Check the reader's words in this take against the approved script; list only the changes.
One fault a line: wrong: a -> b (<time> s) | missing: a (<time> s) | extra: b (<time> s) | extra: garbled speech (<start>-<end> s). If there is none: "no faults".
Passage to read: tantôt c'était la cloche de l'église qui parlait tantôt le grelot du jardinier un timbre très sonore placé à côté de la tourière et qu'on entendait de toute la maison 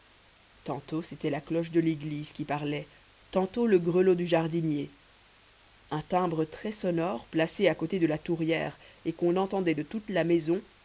no faults